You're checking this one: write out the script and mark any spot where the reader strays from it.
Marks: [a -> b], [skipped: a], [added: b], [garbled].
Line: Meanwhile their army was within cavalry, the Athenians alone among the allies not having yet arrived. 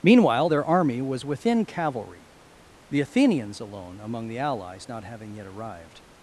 Meanwhile their army was within cavalry, the Athenians alone among the allies not having yet arrived.